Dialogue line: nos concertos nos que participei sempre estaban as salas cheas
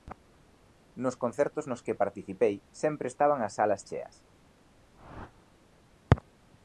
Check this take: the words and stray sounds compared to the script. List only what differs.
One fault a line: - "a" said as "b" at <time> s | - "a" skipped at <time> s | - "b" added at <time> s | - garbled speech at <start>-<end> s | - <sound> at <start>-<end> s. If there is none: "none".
- whoosh at 4.9-5.5 s